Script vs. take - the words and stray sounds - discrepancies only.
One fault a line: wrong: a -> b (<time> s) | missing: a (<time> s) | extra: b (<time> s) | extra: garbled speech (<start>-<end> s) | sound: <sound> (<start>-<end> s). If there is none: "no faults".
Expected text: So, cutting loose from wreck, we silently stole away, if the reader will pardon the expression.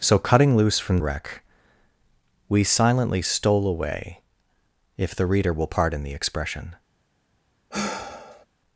sound: sigh (7.7-8.5 s)